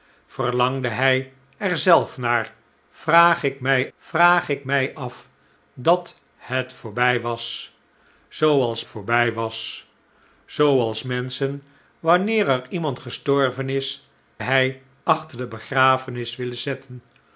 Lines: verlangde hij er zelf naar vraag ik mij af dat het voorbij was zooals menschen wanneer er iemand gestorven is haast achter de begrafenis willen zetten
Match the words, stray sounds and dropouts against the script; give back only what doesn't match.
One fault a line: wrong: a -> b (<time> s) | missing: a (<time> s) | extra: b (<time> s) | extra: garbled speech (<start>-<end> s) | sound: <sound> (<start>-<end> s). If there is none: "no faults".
extra: vraag ik mij (4.0 s)
extra: voorbij was zooals (8.8 s)
wrong: haast -> hij (14.4 s)